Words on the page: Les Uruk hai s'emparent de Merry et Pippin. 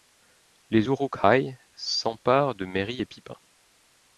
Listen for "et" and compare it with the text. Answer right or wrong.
right